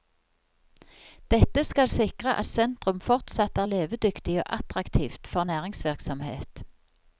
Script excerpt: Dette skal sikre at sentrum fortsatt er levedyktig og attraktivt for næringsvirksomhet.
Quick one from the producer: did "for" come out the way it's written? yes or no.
yes